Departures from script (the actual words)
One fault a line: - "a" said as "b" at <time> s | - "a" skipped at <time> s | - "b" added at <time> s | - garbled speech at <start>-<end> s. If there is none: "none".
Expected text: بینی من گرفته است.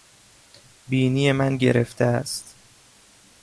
none